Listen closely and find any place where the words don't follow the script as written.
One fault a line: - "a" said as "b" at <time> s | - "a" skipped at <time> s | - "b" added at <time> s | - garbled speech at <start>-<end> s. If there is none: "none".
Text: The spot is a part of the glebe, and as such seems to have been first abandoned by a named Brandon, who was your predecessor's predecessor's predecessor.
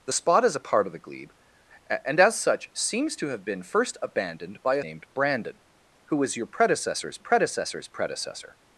none